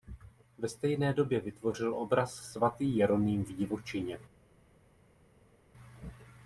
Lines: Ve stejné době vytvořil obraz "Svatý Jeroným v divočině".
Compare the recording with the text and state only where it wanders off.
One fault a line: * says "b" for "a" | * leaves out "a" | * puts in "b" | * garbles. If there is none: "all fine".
all fine